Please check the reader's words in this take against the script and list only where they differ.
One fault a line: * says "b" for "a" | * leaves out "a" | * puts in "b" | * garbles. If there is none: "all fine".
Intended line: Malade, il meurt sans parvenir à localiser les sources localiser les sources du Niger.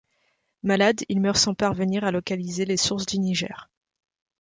* leaves out "localiser les sources"